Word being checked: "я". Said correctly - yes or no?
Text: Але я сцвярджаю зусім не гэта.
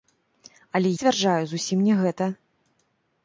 no